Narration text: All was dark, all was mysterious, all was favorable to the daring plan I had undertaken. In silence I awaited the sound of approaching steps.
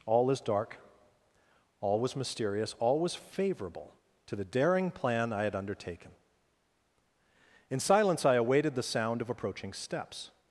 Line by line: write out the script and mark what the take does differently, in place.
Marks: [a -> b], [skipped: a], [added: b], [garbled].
All [was -> is] dark, all was mysterious, all was favorable to the daring plan I had undertaken. In silence I awaited the sound of approaching steps.